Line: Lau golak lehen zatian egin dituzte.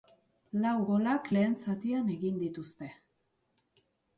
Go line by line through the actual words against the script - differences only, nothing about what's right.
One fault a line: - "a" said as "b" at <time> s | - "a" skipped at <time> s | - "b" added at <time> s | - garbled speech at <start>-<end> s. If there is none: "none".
none